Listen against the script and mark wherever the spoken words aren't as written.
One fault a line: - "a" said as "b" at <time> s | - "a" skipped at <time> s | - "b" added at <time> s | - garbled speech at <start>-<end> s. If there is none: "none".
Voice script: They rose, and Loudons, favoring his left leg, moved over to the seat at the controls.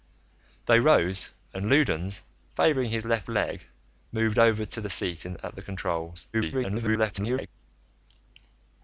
- garbled speech at 6.3-7.5 s